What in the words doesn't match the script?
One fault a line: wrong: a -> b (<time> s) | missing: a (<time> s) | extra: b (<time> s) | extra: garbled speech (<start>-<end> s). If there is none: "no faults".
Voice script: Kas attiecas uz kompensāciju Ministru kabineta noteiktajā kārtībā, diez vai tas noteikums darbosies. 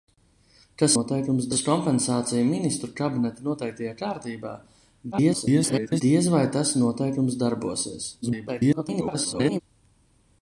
wrong: attiecas -> noteikums (0.9 s)
extra: garbled speech (5.1-6.0 s)
extra: garbled speech (8.2-9.6 s)